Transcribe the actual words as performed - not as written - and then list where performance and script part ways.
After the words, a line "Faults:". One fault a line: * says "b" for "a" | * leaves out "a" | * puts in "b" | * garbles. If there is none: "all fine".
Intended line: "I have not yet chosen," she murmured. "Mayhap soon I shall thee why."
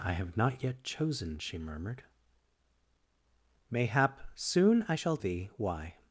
"I have not yet chosen," she murmured. "Mayhap soon I shall thee why."
Faults:
all fine